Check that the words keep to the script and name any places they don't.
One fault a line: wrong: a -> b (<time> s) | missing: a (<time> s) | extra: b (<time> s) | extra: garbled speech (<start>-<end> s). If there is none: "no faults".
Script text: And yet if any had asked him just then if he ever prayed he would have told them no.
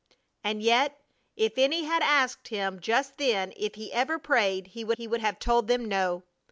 extra: he would (4.9 s)